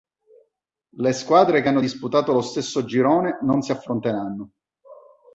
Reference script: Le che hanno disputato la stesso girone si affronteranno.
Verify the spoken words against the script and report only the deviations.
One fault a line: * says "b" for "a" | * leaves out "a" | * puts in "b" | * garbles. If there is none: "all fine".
* puts in "squadre"
* says "lo" for "la"
* puts in "non"